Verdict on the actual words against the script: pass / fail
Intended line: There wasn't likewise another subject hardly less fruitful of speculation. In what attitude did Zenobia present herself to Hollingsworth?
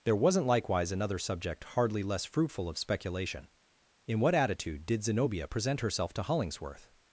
pass